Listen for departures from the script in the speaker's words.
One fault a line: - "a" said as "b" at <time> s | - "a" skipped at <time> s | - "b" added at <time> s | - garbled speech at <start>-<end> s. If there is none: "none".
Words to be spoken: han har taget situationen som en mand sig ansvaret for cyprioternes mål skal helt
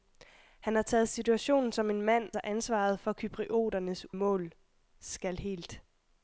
none